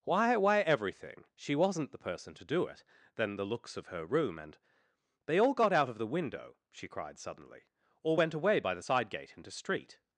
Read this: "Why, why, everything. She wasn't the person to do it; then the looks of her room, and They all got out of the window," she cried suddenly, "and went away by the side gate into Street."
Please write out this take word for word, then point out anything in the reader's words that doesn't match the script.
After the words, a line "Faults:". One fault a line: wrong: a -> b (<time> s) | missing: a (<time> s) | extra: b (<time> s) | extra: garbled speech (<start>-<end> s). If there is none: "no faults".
"Why, why, everything. She wasn't the person to do it; then the looks of her room, and They all got out of the window," she cried suddenly, "or went away by the side gate into Street."
Faults:
wrong: and -> or (8.0 s)